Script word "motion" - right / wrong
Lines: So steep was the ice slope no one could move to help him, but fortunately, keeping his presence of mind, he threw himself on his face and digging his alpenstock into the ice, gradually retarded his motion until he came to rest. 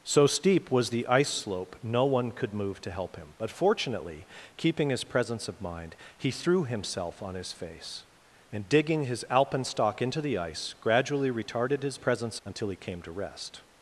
wrong